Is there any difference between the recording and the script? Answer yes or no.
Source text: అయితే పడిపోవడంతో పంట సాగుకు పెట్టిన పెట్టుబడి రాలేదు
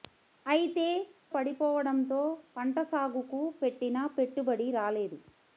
no